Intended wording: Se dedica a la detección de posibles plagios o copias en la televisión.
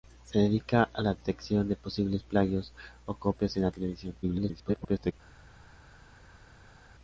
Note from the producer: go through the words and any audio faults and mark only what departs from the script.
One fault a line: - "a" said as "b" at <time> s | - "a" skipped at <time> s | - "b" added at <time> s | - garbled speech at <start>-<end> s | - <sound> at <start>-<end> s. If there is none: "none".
- garbled speech at 4.2-5.1 s